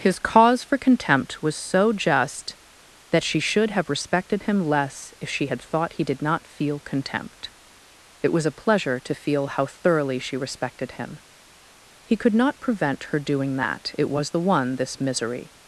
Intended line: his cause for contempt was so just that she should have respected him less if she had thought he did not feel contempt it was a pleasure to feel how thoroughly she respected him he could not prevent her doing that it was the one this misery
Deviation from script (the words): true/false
false